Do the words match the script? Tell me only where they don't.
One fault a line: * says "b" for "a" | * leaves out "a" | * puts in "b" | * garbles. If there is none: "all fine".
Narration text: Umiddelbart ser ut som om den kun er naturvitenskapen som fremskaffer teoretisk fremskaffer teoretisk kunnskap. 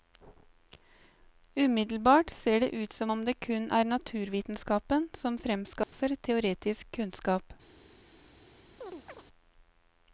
* puts in "det"
* says "det" for "den"
* leaves out "fremskaffer teoretisk"